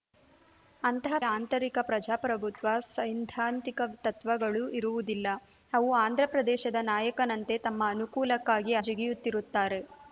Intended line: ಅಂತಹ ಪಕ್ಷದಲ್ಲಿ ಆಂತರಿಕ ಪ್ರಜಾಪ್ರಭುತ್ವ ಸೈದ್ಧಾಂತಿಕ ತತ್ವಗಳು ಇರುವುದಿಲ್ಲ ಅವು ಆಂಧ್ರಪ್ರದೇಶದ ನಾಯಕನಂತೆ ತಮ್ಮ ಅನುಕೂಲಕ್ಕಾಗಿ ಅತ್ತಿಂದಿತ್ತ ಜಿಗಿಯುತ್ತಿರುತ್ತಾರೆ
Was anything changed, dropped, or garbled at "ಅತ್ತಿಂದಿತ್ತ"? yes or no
yes